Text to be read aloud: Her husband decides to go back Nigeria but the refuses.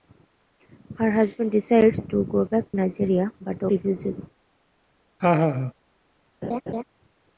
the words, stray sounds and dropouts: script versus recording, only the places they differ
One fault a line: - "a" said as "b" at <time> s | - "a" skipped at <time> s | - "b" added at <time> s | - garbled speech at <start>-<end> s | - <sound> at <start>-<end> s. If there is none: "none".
- laugh at 5.2-5.7 s
- laugh at 6.4-6.8 s